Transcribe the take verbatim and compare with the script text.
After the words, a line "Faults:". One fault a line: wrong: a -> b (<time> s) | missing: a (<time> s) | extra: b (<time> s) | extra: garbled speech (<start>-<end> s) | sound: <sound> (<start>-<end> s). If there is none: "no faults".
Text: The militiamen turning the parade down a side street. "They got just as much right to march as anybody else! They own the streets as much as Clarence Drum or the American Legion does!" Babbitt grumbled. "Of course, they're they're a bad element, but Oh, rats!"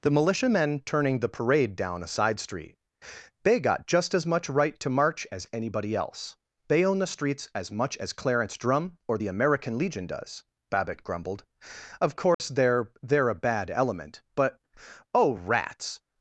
The militiamen turning the parade down a side street. "They got just as much right to march as anybody else! They own the streets as much as Clarence Drum or the American Legion does!" Babbitt grumbled. "Of course, they're they're a bad element, but Oh, rats!"
Faults:
sound: dropout (12.3-12.4 s)